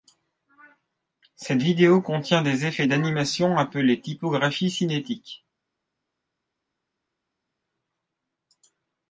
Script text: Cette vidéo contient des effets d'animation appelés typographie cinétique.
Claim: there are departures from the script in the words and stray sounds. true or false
false